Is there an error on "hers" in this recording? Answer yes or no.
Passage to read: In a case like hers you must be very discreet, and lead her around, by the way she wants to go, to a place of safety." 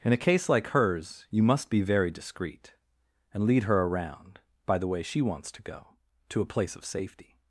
no